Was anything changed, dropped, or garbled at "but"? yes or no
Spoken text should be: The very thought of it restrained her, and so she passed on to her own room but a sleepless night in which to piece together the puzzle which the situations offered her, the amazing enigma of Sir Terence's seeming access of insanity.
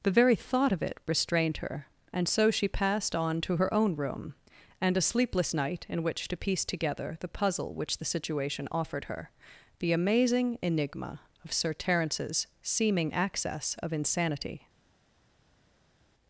yes